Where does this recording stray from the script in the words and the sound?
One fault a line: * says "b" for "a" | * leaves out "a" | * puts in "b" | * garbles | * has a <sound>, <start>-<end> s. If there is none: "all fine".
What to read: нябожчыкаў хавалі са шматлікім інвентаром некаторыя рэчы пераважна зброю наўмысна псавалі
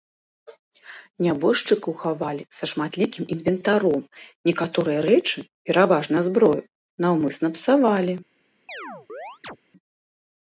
* has a chirp, 8.7-9.6 s